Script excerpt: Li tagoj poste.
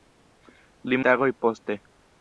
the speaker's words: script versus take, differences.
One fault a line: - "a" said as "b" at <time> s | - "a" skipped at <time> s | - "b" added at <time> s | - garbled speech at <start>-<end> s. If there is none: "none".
none